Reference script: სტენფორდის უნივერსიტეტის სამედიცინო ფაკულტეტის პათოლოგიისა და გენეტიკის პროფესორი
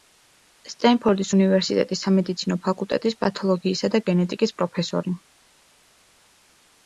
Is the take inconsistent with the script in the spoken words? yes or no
no